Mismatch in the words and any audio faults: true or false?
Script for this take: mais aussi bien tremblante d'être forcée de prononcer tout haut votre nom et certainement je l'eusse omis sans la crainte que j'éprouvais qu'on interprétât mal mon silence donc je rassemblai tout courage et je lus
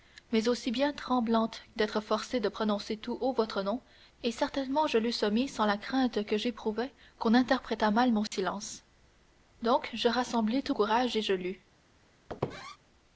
true